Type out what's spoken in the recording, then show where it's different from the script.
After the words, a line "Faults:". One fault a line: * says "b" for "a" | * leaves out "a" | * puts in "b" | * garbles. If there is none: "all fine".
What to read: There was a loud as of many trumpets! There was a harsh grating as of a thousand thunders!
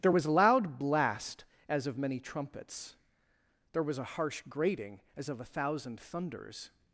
There was a loud blast as of many trumpets! There was a harsh grating as of a thousand thunders!
Faults:
* puts in "blast"